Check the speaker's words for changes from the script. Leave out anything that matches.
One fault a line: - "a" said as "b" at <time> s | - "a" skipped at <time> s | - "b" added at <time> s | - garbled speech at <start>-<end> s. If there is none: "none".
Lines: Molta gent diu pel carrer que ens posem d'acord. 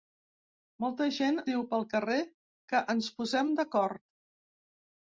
none